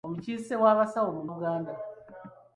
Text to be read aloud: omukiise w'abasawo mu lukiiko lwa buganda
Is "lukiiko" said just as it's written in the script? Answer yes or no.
no